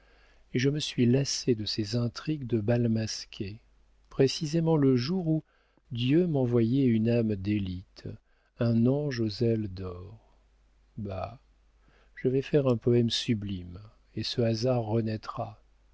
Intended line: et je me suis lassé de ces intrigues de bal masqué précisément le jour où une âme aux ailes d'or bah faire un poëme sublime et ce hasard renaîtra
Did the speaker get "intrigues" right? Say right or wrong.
right